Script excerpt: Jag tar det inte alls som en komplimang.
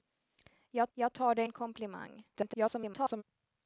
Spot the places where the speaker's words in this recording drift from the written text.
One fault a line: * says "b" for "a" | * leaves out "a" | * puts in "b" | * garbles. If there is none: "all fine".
* puts in "jag"
* leaves out "inte alls som"
* garbles